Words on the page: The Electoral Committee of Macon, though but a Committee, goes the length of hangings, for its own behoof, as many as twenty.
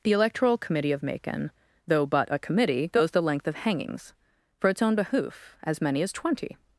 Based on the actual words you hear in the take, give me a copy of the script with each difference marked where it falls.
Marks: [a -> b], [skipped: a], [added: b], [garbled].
The Electoral Committee of Macon, though but a Committee, goes the length of hangings, for its own behoof, as many as twenty.